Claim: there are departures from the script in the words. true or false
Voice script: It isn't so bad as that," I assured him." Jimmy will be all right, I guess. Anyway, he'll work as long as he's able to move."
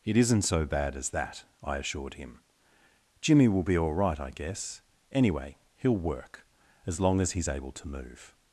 false